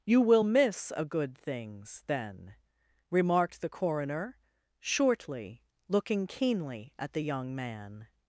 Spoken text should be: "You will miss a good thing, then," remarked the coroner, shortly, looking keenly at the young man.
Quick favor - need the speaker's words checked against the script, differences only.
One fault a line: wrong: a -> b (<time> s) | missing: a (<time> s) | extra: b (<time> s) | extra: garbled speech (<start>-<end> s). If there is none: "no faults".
wrong: thing -> things (1.4 s)